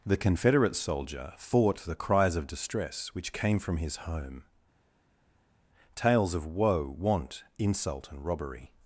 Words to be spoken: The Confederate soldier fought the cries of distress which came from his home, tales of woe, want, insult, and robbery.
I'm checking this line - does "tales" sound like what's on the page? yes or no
yes